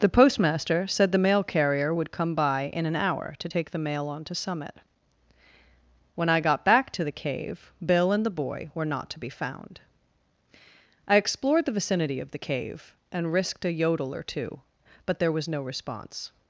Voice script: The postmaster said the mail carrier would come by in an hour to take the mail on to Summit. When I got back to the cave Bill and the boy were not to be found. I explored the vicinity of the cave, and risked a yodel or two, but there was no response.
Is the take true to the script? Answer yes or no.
yes